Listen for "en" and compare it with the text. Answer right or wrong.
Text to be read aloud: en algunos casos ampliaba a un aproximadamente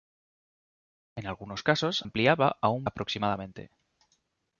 right